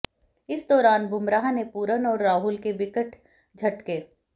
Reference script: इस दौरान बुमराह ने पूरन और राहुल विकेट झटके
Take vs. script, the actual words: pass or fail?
fail